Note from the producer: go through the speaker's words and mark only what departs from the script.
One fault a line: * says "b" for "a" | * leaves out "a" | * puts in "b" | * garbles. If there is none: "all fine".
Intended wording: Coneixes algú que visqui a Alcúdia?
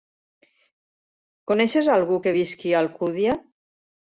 all fine